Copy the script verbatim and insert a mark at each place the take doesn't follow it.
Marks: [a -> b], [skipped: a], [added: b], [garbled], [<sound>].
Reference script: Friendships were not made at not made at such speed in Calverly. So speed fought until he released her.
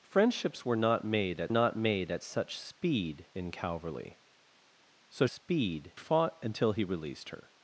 Friendships were not made at not made at such speed in Calverly. So speed fought until he released her.